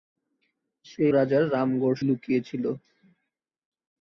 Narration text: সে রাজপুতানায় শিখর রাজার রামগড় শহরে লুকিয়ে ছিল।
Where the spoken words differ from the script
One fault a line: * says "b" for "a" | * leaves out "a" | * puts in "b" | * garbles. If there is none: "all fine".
* leaves out "রাজপুতানায় শিখর"
* leaves out "শহরে"